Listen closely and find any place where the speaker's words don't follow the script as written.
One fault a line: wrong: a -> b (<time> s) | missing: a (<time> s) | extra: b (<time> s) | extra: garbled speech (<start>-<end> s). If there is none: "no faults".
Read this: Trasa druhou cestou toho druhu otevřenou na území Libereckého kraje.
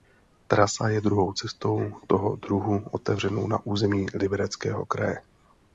extra: je (0.9 s)